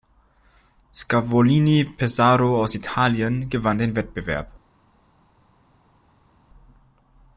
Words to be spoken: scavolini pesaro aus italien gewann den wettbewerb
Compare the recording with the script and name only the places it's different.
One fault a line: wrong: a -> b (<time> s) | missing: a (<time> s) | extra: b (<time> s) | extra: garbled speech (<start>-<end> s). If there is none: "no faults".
no faults